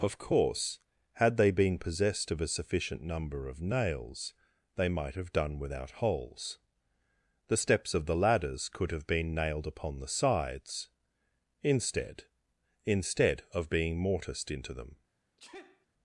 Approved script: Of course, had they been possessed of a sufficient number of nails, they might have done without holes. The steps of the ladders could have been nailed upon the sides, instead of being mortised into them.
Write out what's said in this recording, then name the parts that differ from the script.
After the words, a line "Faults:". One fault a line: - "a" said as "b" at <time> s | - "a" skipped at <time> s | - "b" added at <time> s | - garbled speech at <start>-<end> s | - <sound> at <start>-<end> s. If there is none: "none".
Of course, had they been possessed of a sufficient number of nails, they might have done without holes. The steps of the ladders could have been nailed upon the sides, instead instead of being mortised into them.
Faults:
- "instead" added at 12.8 s
- sneeze at 15.4-15.9 s